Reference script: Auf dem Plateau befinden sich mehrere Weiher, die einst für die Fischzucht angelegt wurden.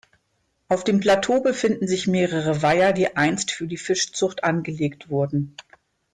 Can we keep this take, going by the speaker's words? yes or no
yes